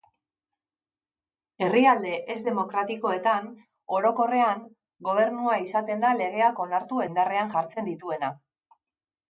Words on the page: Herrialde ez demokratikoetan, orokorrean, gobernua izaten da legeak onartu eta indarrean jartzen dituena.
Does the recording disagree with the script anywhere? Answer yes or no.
yes